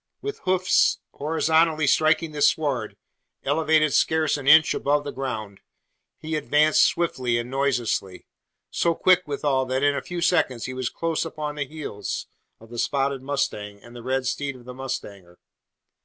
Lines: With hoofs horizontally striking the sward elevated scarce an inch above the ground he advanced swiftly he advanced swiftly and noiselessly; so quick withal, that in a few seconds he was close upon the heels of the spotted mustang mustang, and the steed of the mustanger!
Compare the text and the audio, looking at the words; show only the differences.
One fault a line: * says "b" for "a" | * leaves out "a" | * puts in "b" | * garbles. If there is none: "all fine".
* leaves out "he advanced swiftly"
* leaves out "mustang"
* puts in "red"